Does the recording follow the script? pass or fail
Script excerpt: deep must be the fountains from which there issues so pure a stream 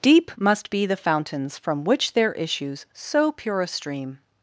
pass